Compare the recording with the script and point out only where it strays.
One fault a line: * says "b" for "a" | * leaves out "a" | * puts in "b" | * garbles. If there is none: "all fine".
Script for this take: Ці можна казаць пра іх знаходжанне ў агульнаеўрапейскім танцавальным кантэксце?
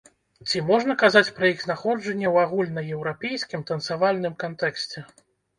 all fine